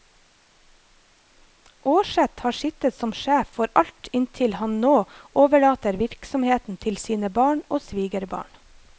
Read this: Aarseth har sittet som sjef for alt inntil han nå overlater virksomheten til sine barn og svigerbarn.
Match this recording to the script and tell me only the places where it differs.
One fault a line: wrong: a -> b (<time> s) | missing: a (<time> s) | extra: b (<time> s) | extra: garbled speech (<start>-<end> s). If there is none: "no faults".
no faults